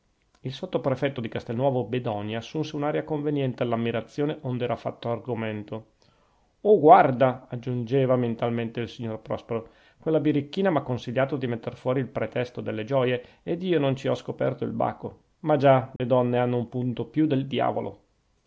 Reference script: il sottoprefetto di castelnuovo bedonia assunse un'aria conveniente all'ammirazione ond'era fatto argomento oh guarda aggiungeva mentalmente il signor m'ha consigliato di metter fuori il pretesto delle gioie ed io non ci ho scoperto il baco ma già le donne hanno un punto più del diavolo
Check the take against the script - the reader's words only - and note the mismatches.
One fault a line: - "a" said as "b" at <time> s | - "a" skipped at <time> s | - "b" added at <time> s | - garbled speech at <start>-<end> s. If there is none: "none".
- "prospero quella birichina" added at 9.2 s